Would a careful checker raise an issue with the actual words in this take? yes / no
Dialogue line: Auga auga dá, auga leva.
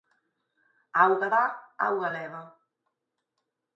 yes